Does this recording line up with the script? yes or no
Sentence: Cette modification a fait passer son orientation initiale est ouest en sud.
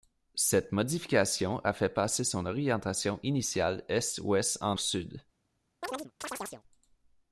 yes